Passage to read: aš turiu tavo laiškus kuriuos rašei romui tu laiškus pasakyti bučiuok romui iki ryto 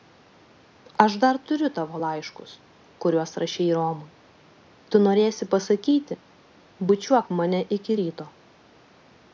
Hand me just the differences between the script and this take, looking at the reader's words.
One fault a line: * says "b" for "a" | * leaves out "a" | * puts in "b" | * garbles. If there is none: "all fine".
* puts in "dar"
* says "norėsi" for "laiškus"
* says "mane" for "romui"